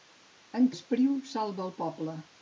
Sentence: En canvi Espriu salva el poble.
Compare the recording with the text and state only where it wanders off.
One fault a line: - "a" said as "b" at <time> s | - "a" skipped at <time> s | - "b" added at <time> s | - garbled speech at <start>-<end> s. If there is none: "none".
- "canvi" skipped at 0.7 s